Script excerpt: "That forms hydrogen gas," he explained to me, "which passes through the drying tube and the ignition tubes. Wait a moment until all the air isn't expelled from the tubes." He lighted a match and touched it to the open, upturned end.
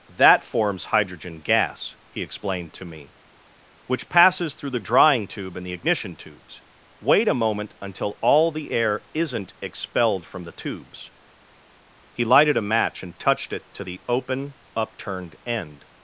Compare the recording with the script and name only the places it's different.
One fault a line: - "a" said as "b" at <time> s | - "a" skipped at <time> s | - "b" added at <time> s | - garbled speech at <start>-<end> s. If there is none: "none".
none